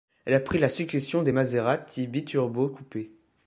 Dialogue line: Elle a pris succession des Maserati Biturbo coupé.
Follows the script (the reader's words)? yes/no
no